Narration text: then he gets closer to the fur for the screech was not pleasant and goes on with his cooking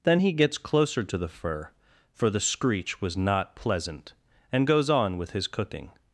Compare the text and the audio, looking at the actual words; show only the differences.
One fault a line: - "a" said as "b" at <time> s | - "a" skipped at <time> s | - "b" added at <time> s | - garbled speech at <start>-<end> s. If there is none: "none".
none